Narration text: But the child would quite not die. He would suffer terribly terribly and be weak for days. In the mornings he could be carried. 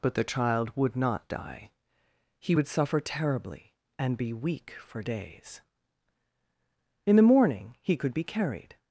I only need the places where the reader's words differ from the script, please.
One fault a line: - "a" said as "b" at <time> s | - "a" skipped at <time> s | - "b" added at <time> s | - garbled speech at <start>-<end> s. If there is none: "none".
- "quite" skipped at 0.9 s
- "terribly" skipped at 3.7 s
- "mornings" said as "morning" at 7.2 s